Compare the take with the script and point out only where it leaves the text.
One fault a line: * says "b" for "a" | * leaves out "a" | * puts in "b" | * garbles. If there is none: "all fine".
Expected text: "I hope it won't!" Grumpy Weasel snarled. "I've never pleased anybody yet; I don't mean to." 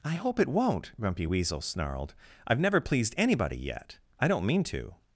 all fine